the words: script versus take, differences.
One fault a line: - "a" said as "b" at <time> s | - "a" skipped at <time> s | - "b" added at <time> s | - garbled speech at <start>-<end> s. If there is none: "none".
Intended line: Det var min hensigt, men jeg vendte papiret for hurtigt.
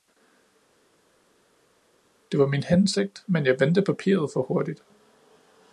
none